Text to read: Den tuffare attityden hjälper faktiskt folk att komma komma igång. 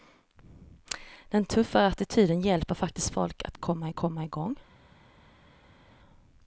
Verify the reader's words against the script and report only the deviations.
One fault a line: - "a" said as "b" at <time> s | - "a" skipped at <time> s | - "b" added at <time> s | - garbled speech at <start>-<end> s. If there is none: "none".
none